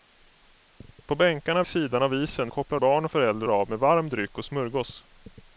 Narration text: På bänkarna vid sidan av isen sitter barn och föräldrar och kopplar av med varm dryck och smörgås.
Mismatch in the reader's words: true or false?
true